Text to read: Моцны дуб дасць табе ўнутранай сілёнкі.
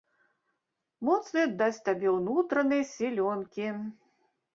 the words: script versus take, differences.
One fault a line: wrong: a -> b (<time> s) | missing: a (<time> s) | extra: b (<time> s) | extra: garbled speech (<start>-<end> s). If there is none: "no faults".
missing: дуб (1.4 s)